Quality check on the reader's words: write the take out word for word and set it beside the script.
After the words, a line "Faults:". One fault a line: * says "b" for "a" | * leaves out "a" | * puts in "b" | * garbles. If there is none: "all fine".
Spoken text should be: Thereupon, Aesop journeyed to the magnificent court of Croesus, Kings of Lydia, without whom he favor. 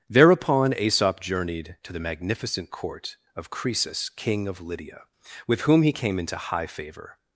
Thereupon, Aesop journeyed to the magnificent court of Croesus, King of Lydia, with whom he came into high favor.
Faults:
* says "King" for "Kings"
* says "with" for "without"
* puts in "came into high"